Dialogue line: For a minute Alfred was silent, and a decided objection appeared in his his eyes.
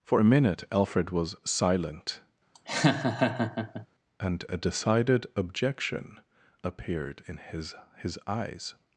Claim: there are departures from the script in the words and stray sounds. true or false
true